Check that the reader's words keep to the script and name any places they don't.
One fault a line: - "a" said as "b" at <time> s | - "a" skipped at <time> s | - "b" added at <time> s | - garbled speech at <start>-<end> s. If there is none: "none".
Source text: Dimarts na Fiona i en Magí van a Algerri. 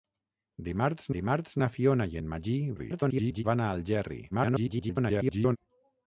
- "dimarts" added at 1.2 s
- garbled speech at 2.8-3.4 s
- garbled speech at 4.3-5.6 s